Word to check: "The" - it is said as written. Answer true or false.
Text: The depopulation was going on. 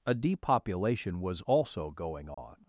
false